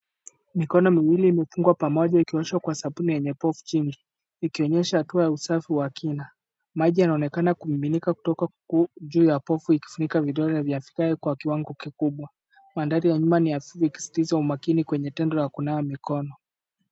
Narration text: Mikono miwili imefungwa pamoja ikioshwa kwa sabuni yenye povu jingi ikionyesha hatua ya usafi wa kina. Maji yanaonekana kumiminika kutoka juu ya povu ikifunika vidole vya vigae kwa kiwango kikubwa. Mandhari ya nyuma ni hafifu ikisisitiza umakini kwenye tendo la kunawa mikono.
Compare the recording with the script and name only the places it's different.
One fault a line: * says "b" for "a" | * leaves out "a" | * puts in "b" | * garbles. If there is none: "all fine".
all fine